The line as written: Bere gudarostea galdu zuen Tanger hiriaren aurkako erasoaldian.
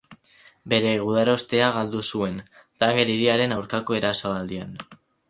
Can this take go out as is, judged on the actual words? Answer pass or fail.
pass